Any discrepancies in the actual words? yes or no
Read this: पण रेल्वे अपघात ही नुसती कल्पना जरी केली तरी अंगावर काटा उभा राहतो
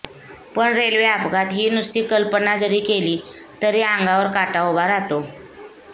no